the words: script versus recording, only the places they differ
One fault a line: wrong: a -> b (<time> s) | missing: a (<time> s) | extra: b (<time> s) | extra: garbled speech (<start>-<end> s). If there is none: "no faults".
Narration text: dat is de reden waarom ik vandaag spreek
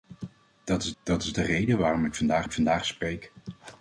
extra: dat is (1.0 s)
extra: ik vandaag (2.4 s)